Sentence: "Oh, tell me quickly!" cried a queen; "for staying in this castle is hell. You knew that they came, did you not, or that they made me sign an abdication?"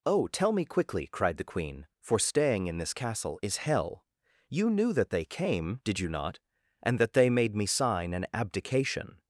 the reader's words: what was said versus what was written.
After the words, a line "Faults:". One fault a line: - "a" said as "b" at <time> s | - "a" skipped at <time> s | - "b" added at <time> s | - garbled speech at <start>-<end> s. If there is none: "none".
"Oh, tell me quickly!" cried the queen; "for staying in this castle is hell. You knew that they came, did you not, and that they made me sign an abdication?"
Faults:
- "a" said as "the" at 1.4 s
- "or" said as "and" at 6.8 s